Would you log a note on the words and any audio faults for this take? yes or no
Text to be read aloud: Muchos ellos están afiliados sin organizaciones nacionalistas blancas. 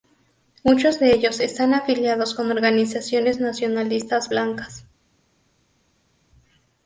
yes